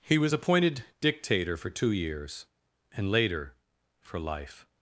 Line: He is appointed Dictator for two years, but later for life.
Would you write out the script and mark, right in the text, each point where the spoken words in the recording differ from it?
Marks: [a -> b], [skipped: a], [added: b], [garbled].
He [is -> was] appointed Dictator for two years, [but -> and] later for life.